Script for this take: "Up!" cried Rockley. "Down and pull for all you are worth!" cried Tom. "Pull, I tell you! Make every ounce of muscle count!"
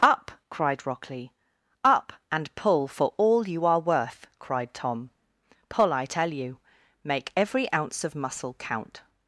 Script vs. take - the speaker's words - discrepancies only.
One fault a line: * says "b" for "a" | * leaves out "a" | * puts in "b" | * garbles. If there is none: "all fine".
* says "Up" for "Down"